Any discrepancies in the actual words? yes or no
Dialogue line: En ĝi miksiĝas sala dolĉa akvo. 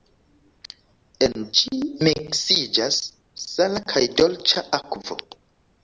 yes